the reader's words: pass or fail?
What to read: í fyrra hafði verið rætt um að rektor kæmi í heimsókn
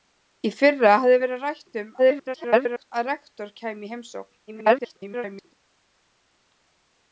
fail